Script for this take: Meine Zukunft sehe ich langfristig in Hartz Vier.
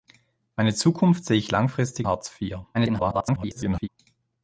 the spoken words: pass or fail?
fail